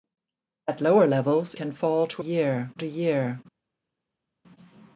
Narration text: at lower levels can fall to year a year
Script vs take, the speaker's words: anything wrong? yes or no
no